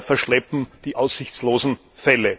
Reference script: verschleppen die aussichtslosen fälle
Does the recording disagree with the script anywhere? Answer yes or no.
no